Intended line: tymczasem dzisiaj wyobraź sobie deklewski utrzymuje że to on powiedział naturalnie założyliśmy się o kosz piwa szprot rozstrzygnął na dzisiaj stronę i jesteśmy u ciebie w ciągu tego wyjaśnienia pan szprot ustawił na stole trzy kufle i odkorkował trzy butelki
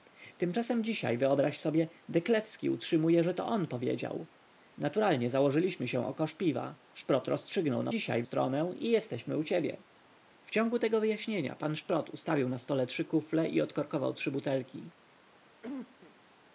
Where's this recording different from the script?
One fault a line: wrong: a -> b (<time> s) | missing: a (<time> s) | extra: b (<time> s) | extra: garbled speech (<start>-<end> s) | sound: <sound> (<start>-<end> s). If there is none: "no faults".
sound: cough (15.6-16.2 s)